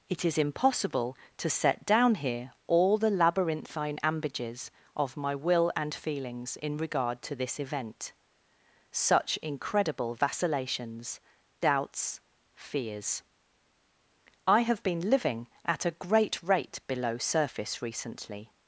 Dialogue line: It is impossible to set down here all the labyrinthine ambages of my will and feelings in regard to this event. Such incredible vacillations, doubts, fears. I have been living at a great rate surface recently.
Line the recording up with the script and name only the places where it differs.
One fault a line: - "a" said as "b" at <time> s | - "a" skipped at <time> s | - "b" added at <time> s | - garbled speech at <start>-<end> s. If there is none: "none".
- "below" added at 16.9 s